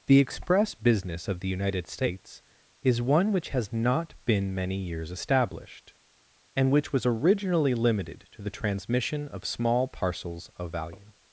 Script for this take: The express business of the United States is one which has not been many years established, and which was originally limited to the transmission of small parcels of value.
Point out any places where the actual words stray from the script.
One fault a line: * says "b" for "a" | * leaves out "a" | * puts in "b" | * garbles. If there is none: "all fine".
all fine